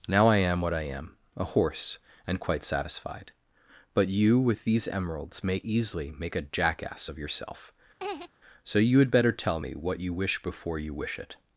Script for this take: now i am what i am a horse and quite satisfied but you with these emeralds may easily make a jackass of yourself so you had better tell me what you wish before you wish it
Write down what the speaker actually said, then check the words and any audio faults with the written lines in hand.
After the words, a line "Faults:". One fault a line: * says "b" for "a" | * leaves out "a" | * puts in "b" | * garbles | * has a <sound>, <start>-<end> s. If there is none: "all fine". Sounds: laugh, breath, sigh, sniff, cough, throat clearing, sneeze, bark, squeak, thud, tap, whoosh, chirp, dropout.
now i am what i am a horse and quite satisfied but you with these emeralds may easily make a jackass of yourself so you had better tell me what you wish before you wish it
Faults:
* has a laugh, 8.0-8.3 s